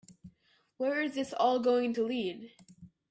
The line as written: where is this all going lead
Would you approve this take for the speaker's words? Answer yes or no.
no